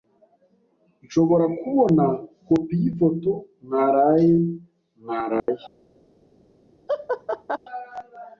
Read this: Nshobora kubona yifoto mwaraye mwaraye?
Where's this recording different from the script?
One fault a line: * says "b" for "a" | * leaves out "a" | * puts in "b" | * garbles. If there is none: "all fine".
* puts in "kopi"